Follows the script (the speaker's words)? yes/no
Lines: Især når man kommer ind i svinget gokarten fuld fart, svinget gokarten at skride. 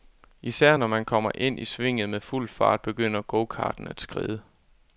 no